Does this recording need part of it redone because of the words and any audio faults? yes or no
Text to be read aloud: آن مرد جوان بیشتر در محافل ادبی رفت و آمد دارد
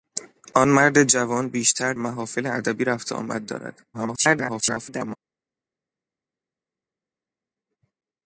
yes